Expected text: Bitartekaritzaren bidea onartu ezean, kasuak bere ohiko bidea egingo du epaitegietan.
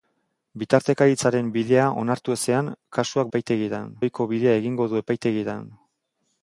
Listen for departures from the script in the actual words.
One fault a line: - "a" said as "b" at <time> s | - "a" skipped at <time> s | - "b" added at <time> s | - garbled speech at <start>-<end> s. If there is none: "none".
- "bere" said as "epaitegietan" at 3.3 s